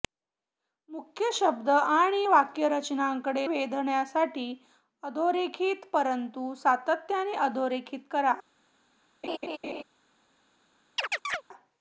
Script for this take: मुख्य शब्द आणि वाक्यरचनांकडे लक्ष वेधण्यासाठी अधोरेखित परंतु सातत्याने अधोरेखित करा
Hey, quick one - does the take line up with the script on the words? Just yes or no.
no